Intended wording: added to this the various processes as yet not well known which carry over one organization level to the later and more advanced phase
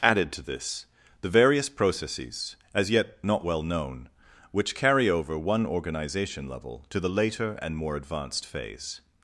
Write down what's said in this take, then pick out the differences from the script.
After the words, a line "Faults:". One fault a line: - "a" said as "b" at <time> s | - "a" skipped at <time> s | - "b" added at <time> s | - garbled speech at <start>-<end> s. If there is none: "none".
added to this the various processes as yet not well known which carry over one organization level to the later and more advanced phase
Faults:
none